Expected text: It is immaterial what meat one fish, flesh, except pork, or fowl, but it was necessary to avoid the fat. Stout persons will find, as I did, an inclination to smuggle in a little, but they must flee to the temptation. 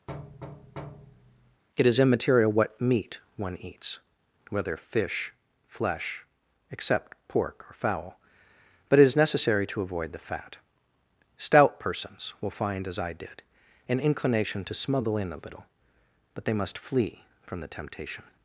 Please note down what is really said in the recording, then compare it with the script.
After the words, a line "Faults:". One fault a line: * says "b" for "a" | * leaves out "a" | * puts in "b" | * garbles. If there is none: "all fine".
It is immaterial what meat one eats, whether fish, flesh, except pork, or fowl, but it is necessary to avoid the fat. Stout persons will find, as I did, an inclination to smuggle in a little, but they must flee from the temptation.
Faults:
* puts in "eats whether"
* says "is" for "was"
* says "from" for "to"